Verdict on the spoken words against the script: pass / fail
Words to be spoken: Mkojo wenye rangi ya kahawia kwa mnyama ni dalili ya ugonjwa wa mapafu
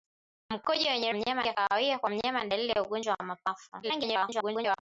fail